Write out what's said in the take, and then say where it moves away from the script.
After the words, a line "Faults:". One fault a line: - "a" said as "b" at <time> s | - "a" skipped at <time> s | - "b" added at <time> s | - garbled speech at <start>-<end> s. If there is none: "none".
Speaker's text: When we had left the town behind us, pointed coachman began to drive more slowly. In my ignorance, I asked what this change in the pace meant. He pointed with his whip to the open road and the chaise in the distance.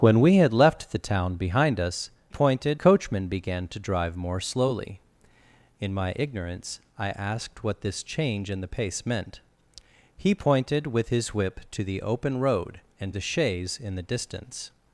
When we had left the town behind us, pointed coachman began to drive more slowly. In my ignorance, I asked what this change in the pace meant. He pointed with his whip to the open road and the chaise in the distance.
Faults:
none